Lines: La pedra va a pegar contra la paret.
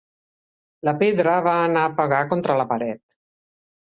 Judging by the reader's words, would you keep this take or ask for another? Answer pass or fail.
fail